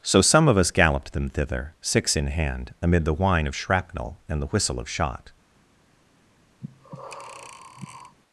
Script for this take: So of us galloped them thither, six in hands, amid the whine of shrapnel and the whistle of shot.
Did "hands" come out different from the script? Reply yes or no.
yes